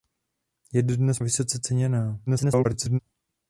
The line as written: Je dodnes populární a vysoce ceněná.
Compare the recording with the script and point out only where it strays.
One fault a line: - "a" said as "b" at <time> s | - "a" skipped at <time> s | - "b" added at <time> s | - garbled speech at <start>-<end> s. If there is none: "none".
- "populární" skipped at 1.2 s
- garbled speech at 2.3-3.0 s